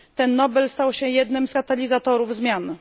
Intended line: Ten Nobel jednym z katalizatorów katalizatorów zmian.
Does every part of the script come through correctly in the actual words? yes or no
no